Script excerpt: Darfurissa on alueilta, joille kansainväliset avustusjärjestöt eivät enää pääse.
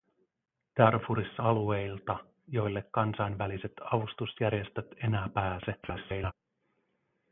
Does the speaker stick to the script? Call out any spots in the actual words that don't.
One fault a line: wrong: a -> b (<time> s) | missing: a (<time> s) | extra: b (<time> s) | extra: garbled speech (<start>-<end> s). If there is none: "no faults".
missing: on (1.4 s)
missing: eivät (4.9 s)
extra: garbled speech (5.8-6.3 s)